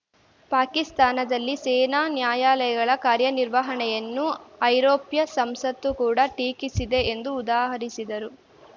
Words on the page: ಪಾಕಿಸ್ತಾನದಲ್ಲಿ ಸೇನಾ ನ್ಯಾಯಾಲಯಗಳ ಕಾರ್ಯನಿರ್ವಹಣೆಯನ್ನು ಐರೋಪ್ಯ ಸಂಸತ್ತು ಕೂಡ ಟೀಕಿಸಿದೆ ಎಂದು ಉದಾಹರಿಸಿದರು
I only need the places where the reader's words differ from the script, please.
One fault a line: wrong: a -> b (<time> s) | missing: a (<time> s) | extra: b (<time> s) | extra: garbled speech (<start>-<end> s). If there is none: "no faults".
no faults